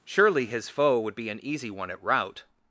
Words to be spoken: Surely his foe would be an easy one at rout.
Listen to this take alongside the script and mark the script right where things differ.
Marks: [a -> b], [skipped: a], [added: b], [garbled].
Surely his foe would be an easy one at rout.